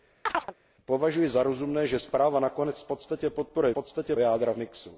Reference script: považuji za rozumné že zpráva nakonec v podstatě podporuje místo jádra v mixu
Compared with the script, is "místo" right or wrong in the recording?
wrong